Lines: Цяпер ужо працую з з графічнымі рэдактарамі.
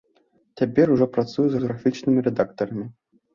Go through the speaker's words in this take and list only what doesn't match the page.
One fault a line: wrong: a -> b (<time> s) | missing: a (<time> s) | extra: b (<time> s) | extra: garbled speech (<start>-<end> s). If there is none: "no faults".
no faults